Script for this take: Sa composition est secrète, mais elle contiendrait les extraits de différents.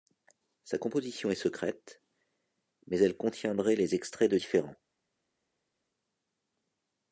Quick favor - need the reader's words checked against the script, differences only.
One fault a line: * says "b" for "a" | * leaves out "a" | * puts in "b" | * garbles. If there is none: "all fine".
all fine